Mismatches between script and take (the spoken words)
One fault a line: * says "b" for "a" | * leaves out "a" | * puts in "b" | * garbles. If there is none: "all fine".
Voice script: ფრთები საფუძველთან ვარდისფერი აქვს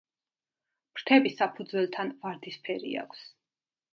all fine